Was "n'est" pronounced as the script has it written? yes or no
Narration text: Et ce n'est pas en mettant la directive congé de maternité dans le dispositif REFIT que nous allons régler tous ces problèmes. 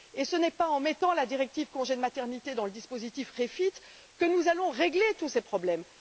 yes